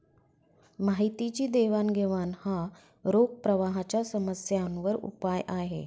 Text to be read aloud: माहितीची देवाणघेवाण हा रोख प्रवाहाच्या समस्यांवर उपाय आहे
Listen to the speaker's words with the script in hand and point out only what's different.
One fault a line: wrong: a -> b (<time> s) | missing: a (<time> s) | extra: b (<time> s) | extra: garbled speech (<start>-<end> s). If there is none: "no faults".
no faults